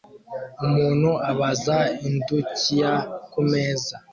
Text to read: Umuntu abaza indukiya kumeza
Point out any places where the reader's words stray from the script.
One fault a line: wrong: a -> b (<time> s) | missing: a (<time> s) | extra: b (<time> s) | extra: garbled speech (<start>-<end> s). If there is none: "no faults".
no faults